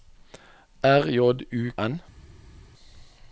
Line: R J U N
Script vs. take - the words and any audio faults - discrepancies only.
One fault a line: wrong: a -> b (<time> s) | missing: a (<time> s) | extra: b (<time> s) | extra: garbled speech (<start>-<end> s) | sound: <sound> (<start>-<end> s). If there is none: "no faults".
no faults